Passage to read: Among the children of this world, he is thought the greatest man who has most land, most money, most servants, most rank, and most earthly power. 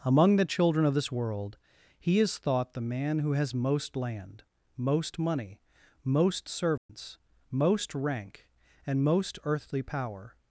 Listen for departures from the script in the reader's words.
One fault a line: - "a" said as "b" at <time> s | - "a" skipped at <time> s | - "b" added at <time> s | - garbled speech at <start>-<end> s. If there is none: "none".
- "greatest" skipped at 2.8 s